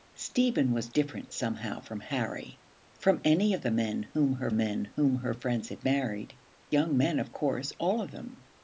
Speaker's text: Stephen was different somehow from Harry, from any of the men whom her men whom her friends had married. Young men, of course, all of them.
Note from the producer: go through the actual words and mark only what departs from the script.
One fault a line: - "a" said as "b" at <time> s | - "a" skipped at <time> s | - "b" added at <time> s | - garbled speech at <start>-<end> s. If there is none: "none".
none